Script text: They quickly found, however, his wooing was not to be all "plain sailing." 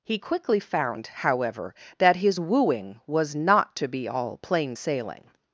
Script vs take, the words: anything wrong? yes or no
yes